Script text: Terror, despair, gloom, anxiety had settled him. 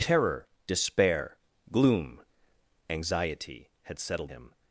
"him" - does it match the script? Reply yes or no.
yes